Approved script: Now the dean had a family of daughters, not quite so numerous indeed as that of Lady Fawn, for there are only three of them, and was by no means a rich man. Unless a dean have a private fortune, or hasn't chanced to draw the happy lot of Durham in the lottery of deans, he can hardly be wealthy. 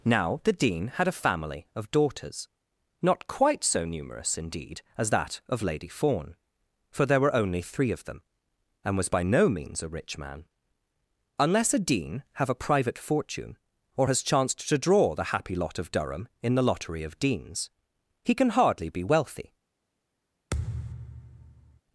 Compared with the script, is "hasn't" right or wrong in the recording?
wrong